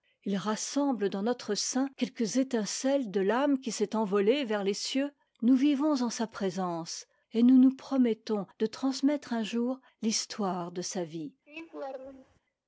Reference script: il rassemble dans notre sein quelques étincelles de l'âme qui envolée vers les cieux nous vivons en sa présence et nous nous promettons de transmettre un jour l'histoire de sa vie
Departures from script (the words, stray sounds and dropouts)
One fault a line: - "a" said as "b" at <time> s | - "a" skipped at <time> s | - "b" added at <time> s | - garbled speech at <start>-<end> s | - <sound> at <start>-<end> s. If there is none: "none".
- "s'est" added at 3.7 s
- laugh at 11.5-12.4 s